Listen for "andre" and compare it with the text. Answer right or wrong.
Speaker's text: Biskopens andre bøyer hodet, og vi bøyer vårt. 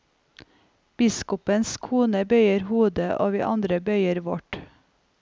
wrong